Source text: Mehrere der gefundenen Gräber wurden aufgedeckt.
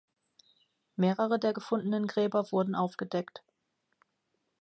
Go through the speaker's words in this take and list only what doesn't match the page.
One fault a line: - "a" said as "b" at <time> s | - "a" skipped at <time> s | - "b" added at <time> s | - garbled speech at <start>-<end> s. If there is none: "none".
none